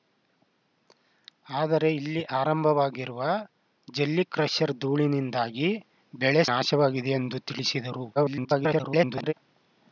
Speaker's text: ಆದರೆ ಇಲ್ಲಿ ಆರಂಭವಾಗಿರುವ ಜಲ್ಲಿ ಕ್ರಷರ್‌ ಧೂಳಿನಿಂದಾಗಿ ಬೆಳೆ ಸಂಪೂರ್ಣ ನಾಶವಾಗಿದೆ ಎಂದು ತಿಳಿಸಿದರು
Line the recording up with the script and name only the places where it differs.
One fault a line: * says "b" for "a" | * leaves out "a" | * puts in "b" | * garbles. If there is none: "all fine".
* leaves out "ಸಂಪೂರ್ಣ"
* garbles